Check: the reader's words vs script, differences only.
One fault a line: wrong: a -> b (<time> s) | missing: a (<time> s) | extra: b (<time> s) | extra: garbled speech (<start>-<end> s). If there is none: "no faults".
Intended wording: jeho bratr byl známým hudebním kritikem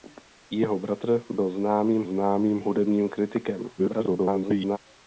extra: známým (2.0 s)
extra: garbled speech (3.8-4.8 s)